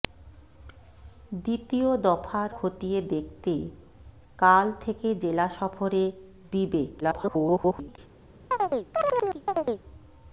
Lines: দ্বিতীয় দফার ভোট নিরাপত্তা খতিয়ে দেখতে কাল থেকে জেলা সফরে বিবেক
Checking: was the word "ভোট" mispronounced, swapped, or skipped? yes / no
yes